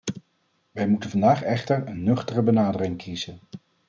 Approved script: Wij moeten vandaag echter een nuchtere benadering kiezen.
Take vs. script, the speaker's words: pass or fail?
pass